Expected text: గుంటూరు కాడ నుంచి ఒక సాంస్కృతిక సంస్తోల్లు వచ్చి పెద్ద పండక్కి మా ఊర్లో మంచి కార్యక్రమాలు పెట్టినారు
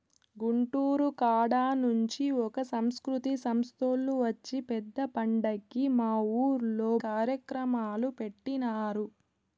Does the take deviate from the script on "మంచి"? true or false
true